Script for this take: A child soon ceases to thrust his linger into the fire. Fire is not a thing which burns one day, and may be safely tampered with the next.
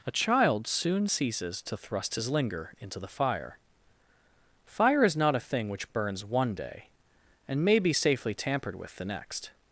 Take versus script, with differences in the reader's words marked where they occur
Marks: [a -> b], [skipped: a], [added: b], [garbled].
A child soon ceases to thrust his linger into the fire. Fire is not a thing which burns one day, and may be safely tampered with the next.